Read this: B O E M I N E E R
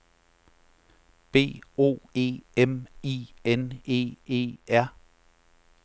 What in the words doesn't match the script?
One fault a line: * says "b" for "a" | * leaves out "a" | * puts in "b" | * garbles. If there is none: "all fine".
all fine